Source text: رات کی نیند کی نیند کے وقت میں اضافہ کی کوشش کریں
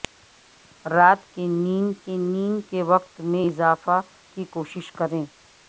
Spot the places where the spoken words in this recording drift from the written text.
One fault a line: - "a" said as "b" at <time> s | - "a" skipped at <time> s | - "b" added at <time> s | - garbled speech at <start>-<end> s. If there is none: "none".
none